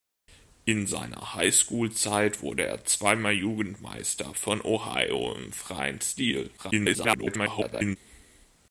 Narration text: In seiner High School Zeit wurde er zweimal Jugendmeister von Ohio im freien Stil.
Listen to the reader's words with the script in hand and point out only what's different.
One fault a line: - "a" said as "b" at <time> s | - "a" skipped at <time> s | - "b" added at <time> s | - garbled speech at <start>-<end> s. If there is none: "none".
- garbled speech at 6.6-8.0 s